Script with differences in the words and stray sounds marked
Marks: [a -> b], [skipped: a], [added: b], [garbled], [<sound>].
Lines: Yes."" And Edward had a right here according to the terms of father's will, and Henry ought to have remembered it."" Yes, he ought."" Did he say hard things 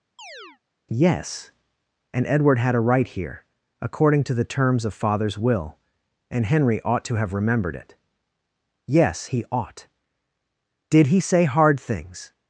[chirp] Yes."" And Edward had a right here according to the terms of father's will, and Henry ought to have remembered it."" Yes, he ought."" Did he say hard things